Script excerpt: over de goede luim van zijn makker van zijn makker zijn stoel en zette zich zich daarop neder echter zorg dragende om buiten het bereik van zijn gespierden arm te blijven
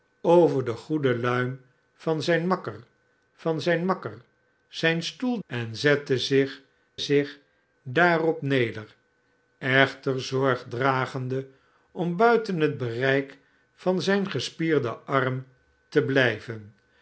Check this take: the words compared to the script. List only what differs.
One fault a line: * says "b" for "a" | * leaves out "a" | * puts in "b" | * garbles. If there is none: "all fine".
all fine